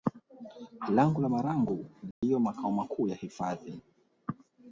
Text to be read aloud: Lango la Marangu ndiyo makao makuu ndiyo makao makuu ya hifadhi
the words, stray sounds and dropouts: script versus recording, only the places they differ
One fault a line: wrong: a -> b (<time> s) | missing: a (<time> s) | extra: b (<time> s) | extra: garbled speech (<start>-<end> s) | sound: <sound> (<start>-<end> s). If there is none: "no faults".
sound: dropout (2.1-2.2 s)
missing: ndiyo makao makuu (3.1 s)